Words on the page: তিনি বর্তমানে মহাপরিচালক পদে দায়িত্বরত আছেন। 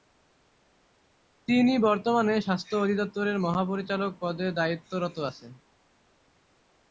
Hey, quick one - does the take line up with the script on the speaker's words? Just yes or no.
no